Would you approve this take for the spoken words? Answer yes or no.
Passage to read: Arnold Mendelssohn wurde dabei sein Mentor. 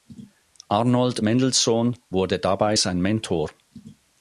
yes